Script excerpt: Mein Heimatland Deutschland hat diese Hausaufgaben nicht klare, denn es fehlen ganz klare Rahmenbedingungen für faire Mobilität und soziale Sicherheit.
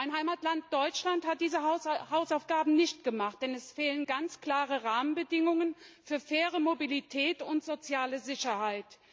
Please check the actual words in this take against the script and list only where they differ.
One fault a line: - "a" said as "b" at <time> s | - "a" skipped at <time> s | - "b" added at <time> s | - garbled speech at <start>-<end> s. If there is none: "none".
- "klare" said as "gemacht" at 3.0 s